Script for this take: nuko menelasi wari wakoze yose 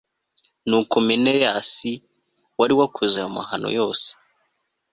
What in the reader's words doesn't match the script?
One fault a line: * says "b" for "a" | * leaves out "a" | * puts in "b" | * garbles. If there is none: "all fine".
* puts in "ayo mahano"